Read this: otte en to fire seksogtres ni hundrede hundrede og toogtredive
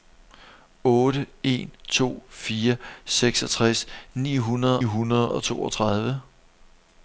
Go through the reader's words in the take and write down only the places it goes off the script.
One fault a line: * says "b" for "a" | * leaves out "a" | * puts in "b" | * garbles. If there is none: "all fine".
all fine